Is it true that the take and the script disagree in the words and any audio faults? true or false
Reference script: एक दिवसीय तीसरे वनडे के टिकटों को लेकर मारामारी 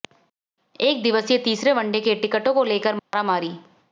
true